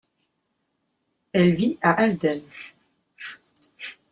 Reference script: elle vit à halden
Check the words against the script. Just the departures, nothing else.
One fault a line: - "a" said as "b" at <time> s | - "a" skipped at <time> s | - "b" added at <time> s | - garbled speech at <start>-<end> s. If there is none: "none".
none